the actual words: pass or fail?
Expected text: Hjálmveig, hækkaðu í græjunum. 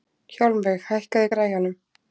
pass